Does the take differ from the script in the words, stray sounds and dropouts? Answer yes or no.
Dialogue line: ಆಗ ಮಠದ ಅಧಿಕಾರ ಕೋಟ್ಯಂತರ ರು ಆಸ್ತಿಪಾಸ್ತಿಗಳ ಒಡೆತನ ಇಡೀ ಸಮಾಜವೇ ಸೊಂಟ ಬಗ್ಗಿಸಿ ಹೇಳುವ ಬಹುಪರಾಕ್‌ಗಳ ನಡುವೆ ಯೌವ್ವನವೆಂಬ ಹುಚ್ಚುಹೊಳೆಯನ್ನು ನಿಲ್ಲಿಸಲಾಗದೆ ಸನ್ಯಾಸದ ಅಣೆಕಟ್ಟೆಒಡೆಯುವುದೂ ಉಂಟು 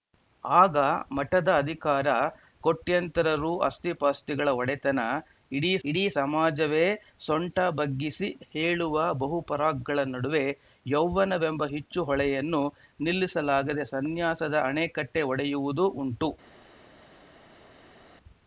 yes